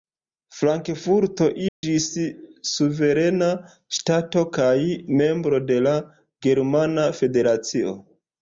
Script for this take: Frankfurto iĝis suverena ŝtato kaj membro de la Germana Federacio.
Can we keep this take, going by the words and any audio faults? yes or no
no